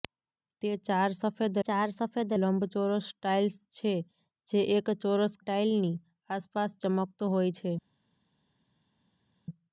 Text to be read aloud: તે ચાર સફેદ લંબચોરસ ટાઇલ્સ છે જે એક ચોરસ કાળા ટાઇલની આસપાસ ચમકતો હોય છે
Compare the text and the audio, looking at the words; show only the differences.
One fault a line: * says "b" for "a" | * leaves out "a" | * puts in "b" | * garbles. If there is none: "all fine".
* puts in "ચાર સફેદ"
* leaves out "કાળા"